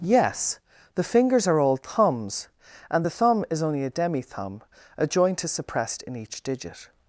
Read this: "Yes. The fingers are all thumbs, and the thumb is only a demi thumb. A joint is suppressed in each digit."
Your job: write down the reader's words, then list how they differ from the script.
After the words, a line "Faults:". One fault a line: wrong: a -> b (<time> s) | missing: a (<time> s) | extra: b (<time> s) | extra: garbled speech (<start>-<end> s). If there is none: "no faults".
"Yes. The fingers are all thumbs, and the thumb is only a demi thumb. A joint is suppressed in each digit."
Faults:
no faults